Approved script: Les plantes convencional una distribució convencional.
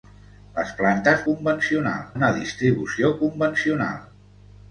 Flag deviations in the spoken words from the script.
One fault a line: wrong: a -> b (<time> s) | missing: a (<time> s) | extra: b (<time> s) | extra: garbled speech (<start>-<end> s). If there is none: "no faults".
no faults